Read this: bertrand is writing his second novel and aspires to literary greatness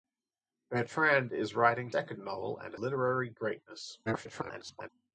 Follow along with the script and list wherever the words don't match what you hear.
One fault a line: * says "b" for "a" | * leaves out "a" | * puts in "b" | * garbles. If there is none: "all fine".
* leaves out "his"
* leaves out "aspires to"
* garbles